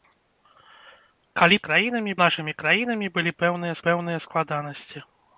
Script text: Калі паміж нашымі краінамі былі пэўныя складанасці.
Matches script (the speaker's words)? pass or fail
fail